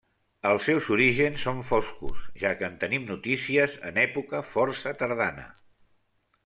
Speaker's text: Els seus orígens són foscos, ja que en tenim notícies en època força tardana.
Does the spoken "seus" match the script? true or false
true